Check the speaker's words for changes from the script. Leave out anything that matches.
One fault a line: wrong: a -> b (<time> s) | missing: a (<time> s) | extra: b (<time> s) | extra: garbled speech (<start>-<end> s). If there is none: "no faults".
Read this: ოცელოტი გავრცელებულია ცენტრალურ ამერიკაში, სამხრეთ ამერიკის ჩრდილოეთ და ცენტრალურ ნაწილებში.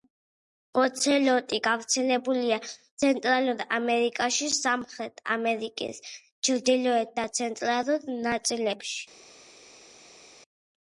no faults